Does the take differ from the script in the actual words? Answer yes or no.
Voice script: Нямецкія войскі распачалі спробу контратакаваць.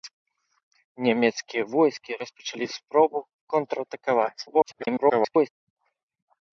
yes